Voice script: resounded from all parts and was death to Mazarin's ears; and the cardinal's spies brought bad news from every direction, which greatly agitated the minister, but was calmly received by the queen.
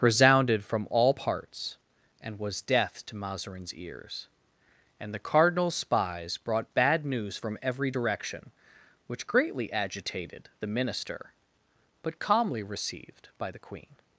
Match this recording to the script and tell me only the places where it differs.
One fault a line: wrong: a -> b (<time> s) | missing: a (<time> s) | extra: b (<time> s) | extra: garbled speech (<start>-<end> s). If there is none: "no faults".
missing: was (12.2 s)